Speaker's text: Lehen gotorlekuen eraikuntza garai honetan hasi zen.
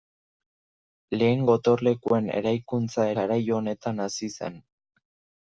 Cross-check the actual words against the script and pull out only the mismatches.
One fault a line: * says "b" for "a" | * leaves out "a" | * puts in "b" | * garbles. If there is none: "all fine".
all fine